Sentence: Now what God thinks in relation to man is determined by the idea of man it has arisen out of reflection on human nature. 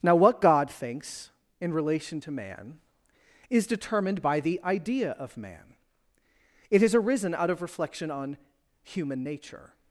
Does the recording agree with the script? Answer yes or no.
yes